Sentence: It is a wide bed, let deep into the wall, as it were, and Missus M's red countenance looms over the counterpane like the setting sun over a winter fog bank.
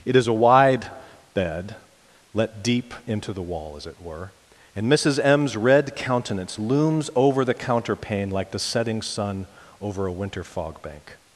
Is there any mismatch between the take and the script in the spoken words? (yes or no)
no